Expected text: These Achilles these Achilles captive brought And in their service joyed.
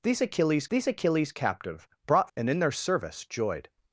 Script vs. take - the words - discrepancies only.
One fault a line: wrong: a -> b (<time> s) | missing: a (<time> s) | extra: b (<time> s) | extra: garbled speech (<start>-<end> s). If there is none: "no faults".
no faults